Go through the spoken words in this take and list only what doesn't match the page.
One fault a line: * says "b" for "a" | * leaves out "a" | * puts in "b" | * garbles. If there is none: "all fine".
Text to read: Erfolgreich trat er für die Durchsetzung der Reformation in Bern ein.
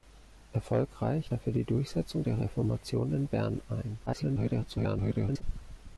* leaves out "trat"
* garbles